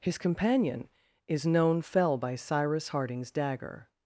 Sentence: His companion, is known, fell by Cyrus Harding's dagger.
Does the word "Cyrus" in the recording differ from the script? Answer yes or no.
no